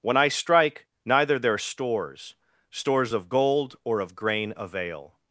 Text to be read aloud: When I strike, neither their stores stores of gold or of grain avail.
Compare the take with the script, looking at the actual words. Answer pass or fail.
pass